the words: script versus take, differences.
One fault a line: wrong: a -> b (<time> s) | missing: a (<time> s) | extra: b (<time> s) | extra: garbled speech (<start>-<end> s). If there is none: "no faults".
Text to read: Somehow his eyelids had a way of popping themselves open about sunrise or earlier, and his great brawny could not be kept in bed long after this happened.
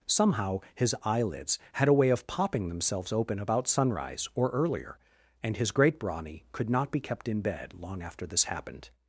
no faults